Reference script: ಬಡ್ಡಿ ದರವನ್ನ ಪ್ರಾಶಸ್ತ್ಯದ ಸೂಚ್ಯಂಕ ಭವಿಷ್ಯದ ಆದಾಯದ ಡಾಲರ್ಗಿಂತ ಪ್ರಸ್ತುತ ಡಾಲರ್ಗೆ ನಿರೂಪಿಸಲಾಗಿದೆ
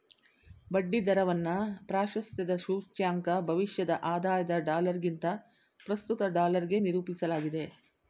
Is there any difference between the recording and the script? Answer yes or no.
no